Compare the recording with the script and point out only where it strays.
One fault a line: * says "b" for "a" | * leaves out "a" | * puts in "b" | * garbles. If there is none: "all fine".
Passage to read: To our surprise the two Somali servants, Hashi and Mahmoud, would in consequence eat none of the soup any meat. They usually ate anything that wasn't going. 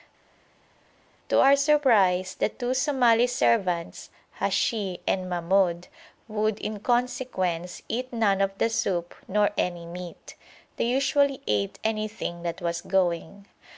* puts in "nor"
* says "was" for "wasn't"